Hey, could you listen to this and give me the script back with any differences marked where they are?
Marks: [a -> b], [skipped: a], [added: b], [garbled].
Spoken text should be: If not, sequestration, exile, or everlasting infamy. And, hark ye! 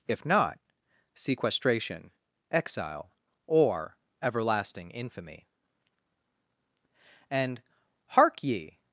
If not, sequestration, exile, or everlasting infamy. And, hark ye!